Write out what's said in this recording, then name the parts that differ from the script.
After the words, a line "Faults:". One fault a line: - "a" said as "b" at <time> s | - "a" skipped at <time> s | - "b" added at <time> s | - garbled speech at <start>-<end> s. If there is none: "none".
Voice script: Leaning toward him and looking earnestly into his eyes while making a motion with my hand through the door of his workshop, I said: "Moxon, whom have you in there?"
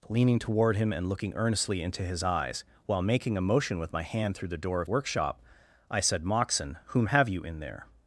Leaning toward him and looking earnestly into his eyes while making a motion with my hand through the door of workshop, I said: "Moxon, whom have you in there?"
Faults:
- "his" skipped at 4.9 s